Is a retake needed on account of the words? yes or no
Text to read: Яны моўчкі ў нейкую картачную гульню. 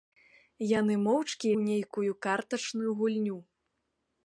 no